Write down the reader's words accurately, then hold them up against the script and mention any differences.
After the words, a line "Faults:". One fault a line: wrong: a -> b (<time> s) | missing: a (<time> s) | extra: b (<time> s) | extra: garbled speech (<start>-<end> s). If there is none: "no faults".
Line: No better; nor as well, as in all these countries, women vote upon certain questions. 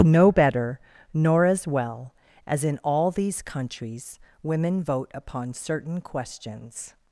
No better; nor as well, as in all these countries, women vote upon certain questions.
Faults:
no faults